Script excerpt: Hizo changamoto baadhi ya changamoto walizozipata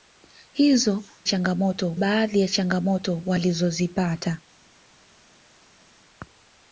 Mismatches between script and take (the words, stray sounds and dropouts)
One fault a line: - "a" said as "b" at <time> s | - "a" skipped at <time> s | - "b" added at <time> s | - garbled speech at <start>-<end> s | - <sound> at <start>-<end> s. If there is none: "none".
none